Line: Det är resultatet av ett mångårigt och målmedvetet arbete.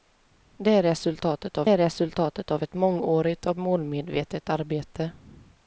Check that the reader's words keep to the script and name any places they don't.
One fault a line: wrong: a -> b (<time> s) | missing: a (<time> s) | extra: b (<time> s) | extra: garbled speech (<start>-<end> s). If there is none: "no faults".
extra: är resultatet av (1.7 s)